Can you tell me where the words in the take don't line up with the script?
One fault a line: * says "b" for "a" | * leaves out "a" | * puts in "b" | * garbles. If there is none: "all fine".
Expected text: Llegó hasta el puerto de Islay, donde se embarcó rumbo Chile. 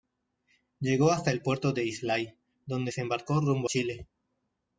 all fine